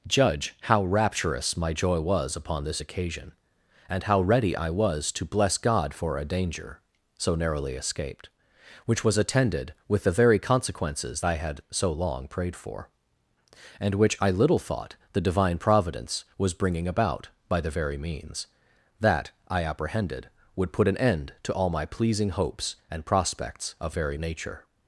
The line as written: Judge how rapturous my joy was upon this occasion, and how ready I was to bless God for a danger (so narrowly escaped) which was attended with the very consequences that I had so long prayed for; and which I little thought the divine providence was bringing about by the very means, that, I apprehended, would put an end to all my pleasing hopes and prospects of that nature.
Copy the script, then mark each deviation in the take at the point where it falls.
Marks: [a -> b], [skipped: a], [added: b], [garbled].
Judge how rapturous my joy was upon this occasion, and how ready I was to bless God for a danger (so narrowly escaped) which was attended with the very consequences [skipped: that] I had so long prayed for; and which I little thought the divine providence was bringing about by the very means, that, I apprehended, would put an end to all my pleasing hopes and prospects of [that -> very] nature.